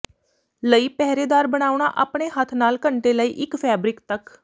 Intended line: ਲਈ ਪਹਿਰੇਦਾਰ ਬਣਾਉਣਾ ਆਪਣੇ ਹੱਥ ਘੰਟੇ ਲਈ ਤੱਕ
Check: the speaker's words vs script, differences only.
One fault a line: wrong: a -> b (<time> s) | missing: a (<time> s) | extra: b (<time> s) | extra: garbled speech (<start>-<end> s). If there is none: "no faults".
extra: ਨਾਲ (2.5 s)
extra: ਇੱਕ ਫੈਬਰਿਕ (3.4 s)